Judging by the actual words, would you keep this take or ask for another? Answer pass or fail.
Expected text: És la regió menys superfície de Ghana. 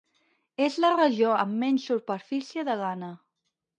fail